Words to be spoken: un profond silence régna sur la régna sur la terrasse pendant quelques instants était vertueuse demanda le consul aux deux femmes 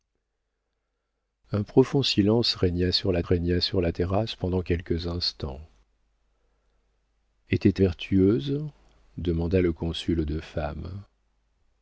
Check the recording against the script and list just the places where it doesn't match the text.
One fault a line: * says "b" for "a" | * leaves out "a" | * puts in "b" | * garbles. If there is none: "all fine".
all fine